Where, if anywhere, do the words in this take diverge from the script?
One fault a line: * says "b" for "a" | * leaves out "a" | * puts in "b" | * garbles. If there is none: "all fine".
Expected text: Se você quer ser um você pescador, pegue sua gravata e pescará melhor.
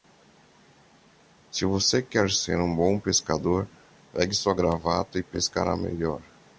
* says "bom" for "você"